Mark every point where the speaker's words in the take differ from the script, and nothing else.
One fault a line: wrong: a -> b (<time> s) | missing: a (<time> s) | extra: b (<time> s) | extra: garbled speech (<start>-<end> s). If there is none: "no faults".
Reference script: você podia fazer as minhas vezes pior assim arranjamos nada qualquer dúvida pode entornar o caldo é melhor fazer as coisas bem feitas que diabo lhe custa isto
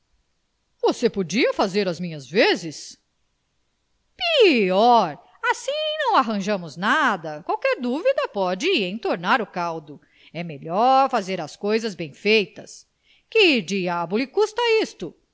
extra: não (6.0 s)